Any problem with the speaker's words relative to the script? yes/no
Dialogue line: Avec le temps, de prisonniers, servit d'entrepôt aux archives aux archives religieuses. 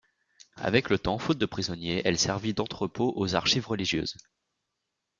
yes